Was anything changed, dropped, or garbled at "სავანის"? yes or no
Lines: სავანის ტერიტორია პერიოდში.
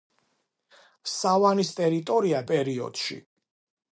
no